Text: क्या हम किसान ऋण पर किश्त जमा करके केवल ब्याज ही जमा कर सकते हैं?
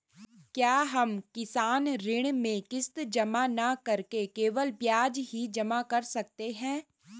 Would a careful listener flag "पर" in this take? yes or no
yes